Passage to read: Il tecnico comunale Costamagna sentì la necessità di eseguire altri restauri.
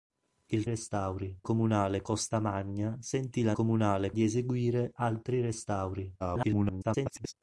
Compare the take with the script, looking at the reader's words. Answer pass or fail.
fail